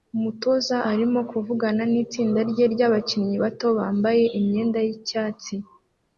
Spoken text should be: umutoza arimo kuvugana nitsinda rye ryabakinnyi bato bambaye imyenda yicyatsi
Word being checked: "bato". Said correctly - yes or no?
yes